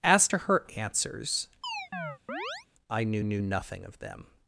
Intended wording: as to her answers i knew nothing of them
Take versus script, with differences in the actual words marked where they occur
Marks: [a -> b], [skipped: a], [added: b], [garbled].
as to her answers i knew [added: knew] nothing of them